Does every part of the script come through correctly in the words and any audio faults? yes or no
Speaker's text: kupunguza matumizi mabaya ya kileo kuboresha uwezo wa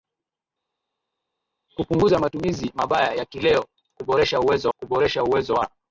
no